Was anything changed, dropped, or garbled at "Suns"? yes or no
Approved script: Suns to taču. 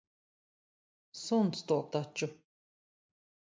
no